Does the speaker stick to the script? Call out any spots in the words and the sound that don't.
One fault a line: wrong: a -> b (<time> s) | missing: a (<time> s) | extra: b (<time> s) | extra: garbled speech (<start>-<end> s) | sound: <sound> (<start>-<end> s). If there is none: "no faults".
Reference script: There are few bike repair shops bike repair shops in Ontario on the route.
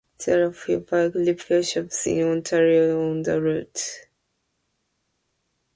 missing: bike repair shops (2.1 s)